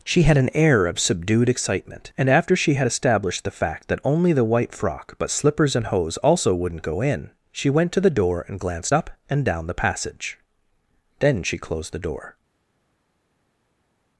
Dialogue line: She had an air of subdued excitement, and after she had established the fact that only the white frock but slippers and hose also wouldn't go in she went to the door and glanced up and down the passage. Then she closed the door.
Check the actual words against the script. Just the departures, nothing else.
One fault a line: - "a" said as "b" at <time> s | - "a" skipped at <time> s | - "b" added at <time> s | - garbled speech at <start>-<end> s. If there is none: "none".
none